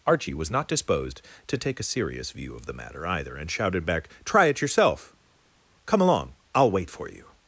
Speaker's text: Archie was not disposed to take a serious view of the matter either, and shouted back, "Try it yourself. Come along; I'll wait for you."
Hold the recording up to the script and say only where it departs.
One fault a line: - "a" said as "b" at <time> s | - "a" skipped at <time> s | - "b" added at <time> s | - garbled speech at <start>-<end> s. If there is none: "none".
none